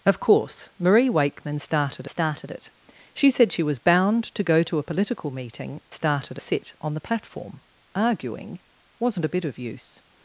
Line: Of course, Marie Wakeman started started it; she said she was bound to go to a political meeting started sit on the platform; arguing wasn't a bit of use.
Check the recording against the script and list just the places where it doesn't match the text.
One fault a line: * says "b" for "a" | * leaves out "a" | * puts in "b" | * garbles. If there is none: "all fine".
all fine